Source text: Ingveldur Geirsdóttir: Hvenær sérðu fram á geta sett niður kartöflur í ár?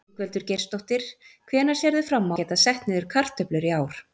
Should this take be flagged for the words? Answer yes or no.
no